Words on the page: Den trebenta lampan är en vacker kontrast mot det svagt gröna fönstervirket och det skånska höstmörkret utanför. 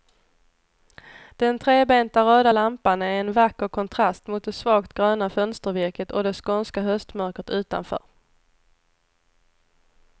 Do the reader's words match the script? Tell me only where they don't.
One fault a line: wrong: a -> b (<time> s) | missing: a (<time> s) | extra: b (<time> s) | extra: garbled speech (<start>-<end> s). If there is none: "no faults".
extra: röda (2.2 s)